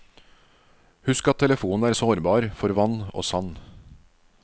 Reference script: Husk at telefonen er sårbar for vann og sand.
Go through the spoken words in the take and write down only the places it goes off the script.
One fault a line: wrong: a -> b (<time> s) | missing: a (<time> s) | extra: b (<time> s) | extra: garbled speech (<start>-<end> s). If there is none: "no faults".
no faults